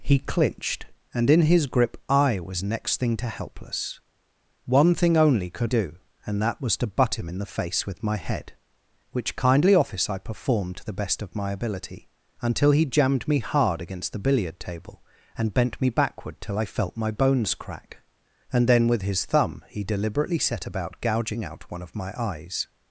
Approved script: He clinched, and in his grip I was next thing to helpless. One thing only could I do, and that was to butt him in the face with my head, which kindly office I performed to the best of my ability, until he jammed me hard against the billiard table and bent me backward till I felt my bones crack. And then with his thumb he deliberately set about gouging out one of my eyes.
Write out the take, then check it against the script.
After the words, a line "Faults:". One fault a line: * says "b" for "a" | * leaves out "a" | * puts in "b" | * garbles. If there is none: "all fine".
He clinched, and in his grip I was next thing to helpless. One thing only could do, and that was to butt him in the face with my head, which kindly office I performed to the best of my ability, until he jammed me hard against the billiard table and bent me backward till I felt my bones crack. And then with his thumb he deliberately set about gouging out one of my eyes.
Faults:
* leaves out "I"